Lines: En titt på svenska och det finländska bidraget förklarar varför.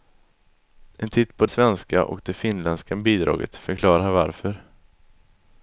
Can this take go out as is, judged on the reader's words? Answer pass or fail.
pass